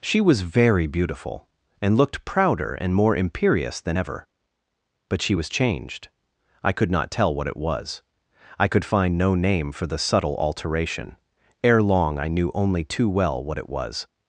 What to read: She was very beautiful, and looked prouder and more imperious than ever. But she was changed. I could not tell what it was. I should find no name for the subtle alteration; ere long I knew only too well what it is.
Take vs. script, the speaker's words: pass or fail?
fail